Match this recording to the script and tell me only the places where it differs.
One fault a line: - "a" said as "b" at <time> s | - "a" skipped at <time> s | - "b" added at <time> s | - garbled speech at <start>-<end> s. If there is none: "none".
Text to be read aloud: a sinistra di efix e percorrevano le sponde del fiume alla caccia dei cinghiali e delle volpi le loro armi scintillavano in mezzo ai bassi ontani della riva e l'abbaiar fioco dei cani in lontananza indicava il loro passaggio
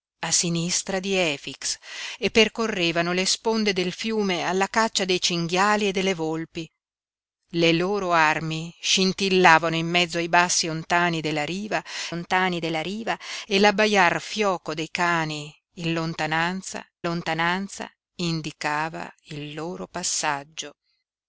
- "ontani della riva" added at 12.1 s
- "lontananza" added at 17.0 s